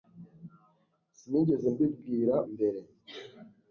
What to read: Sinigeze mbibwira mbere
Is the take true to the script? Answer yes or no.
yes